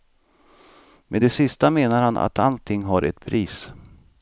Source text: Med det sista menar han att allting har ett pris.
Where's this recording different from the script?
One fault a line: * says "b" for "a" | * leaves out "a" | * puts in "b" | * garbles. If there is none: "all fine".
all fine